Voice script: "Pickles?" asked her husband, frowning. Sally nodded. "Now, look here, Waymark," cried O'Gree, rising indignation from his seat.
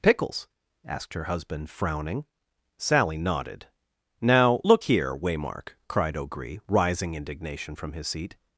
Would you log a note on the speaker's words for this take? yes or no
no